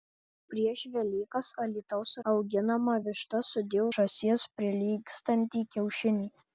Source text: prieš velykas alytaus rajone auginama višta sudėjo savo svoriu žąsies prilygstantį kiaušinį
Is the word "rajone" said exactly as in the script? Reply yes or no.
no